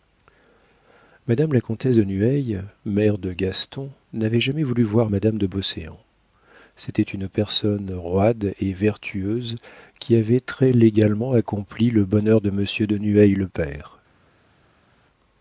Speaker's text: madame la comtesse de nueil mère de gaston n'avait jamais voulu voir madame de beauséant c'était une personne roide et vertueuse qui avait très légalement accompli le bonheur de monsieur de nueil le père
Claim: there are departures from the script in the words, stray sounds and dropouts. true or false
false